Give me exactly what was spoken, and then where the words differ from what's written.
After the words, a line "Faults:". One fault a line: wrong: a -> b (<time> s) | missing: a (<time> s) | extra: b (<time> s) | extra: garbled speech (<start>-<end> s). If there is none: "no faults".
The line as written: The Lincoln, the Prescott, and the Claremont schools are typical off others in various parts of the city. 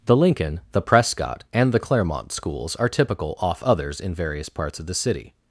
The Lincoln, the Prescott, and the Claremont schools are typical off others in various parts of the city.
Faults:
no faults